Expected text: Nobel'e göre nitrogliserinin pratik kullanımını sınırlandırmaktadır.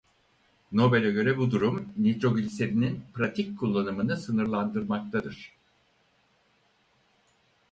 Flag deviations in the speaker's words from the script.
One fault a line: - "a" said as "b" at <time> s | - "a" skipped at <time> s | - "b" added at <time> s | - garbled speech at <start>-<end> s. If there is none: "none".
- "bu durum" added at 1.4 s